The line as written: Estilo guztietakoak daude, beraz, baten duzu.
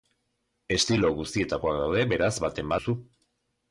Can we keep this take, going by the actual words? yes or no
yes